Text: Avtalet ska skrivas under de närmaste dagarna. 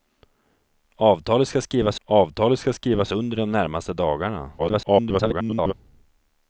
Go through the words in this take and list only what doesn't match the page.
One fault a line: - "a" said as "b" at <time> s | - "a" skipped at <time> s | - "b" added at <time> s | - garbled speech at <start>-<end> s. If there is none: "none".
- "avtalet ska skrivas" added at 2.0 s
- garbled speech at 4.6-5.7 s